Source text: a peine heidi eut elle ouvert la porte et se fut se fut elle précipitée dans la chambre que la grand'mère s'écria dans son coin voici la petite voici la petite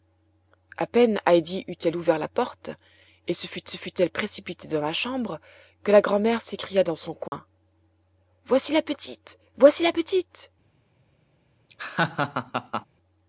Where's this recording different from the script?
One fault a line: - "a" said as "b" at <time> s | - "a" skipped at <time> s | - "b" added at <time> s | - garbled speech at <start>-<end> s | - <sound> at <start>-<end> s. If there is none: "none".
- dropout at 7.3-7.3 s
- laugh at 11.7-12.9 s